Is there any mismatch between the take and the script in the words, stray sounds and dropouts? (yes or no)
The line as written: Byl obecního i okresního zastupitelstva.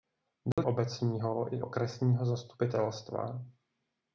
yes